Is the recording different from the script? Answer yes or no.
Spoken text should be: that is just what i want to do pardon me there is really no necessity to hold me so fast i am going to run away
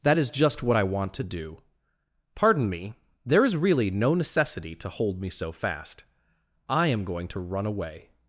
no